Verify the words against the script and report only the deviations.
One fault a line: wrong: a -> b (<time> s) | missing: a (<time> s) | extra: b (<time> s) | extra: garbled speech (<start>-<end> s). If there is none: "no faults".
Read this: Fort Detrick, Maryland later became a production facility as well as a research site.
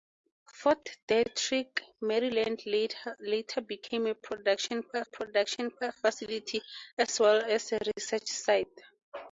extra: production (5.0 s)